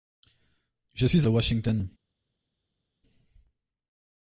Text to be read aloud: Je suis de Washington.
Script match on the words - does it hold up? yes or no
yes